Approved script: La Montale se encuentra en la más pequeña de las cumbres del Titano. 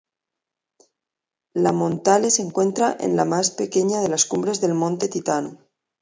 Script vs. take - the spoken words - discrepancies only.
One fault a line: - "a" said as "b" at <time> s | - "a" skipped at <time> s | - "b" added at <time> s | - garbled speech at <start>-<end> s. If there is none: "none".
- "Monte" added at 4.7 s